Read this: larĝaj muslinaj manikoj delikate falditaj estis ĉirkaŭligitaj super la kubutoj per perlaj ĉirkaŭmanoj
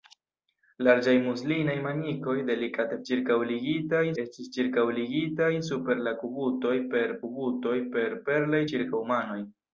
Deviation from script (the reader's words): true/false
true